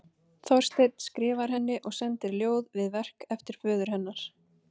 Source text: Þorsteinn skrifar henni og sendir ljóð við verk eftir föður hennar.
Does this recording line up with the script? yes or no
yes